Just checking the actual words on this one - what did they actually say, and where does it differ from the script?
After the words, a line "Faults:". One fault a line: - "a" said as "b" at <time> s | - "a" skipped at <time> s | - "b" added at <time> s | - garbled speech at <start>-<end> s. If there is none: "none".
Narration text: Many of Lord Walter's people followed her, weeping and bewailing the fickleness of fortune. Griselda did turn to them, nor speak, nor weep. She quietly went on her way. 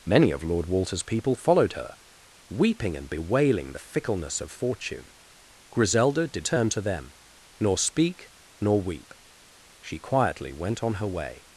Many of Lord Walter's people followed her, weeping and bewailing the fickleness of fortune. Griselda did turn to them, nor speak, nor weep. She quietly went on her way.
Faults:
none